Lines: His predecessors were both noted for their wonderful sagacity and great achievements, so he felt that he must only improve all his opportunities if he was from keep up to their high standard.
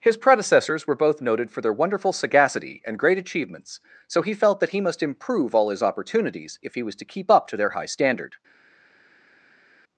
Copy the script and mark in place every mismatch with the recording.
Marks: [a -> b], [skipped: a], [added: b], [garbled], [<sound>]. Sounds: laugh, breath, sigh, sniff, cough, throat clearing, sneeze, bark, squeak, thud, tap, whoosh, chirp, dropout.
His predecessors were both noted for their wonderful sagacity and great achievements, so he felt that he must [skipped: only] improve all his opportunities if he was [from -> to] keep up to their high standard.